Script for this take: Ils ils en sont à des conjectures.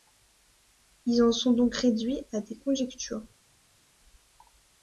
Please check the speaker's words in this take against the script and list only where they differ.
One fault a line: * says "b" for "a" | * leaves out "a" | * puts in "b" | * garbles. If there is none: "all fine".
* leaves out "ils"
* puts in "donc réduits"